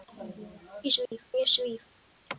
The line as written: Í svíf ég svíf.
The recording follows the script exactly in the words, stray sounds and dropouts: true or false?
false